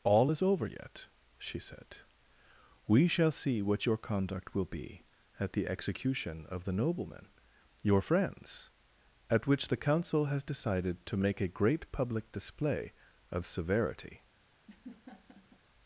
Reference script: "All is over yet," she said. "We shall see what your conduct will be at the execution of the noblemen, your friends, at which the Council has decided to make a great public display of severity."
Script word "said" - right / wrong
right